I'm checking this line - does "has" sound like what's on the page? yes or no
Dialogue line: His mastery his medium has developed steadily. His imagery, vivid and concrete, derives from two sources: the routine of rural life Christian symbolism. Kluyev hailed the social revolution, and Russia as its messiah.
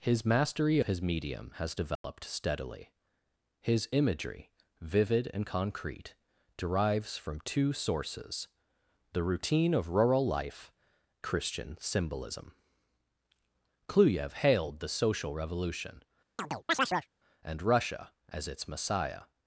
yes